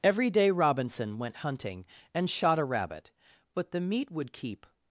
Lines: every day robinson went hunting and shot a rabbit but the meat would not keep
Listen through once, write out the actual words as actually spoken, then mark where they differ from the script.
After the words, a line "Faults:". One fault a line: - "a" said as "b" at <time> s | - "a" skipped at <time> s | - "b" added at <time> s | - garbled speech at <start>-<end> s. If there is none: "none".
every day robinson went hunting and shot a rabbit but the meat would keep
Faults:
- "not" skipped at 4.3 s